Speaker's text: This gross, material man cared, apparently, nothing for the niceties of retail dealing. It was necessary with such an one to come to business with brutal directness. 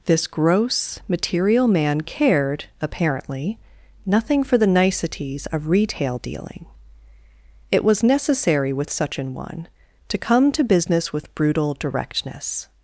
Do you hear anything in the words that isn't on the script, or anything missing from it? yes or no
no